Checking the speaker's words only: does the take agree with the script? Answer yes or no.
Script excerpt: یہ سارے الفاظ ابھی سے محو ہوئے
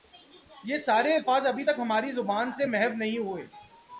no